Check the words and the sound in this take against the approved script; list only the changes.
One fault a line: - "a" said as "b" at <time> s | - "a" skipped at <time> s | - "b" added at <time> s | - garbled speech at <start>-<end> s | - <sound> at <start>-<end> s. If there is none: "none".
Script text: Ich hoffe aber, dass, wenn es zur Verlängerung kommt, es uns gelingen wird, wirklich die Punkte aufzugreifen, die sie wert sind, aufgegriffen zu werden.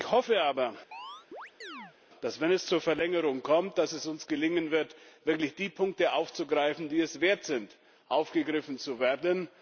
- chirp at 0.9-2.0 s
- "sie" said as "es" at 7.0 s